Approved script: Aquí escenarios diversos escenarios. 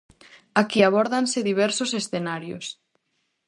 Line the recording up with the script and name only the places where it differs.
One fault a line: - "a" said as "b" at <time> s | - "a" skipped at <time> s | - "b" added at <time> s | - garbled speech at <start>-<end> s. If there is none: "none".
- "escenarios" said as "abórdanse" at 0.8 s